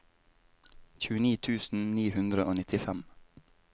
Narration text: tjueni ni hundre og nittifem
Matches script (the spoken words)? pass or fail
fail